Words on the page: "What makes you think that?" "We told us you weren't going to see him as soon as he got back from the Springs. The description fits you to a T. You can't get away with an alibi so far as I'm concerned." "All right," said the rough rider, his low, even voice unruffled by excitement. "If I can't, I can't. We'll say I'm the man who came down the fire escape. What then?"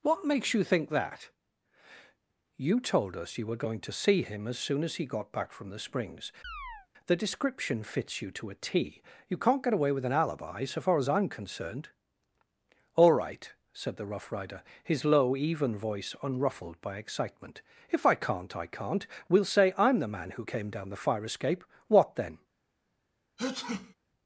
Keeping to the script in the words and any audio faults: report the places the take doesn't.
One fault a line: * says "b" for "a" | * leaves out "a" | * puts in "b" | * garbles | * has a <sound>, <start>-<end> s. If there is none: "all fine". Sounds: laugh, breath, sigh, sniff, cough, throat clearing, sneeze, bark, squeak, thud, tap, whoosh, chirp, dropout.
* says "You" for "We"
* says "were" for "weren't"
* has a chirp, 6.4-6.9 s
* has a sneeze, 23.4-23.9 s